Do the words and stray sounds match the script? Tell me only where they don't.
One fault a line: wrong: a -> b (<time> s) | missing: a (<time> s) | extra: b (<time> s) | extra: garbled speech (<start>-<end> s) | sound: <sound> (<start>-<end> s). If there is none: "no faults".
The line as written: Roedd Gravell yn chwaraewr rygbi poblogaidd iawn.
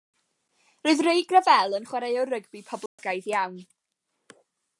extra: Ray (1.1 s)
sound: dropout (2.9-3.0 s)